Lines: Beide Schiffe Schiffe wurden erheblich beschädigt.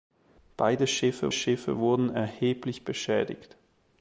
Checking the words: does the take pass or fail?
pass